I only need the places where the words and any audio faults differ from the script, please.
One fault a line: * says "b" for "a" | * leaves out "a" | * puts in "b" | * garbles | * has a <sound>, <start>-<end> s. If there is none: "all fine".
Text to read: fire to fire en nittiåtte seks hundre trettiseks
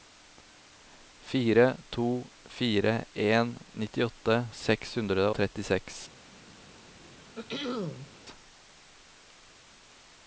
* has a throat clearing, 7.0-8.1 s